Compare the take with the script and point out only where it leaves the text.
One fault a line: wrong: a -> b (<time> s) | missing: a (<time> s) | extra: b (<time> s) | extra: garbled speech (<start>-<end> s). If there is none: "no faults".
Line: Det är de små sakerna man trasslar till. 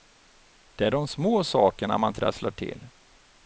no faults